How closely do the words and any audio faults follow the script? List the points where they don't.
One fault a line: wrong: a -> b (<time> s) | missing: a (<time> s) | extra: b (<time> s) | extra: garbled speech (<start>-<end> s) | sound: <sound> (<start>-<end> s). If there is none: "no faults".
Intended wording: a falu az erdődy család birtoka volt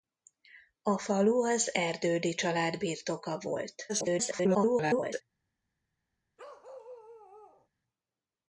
extra: garbled speech (3.9-5.2 s)
sound: bark (6.4-7.7 s)